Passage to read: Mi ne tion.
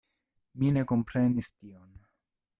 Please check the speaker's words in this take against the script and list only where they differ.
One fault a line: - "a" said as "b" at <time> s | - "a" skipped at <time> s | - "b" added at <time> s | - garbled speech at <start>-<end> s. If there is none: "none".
- "komprenis" added at 0.9 s